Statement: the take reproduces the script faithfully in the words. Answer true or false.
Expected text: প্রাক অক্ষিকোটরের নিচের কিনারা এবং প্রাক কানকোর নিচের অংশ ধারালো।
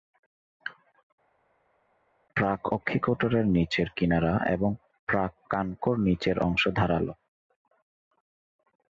true